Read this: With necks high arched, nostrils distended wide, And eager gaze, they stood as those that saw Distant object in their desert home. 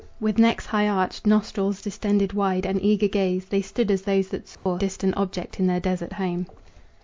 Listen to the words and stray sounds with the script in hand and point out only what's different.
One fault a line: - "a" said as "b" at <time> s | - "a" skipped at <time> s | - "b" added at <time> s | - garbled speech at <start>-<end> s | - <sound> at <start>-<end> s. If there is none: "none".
- dropout at 4.5-4.7 s